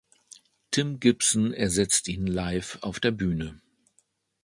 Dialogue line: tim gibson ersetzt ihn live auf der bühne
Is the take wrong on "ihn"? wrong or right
right